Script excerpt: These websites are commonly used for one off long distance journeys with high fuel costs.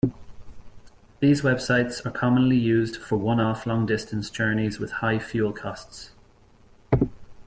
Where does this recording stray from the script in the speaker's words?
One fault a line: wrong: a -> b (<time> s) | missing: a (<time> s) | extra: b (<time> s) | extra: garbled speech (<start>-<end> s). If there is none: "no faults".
no faults